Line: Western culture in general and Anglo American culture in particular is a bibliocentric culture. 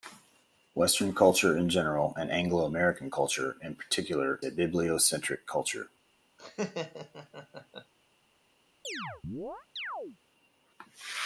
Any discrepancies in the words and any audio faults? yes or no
yes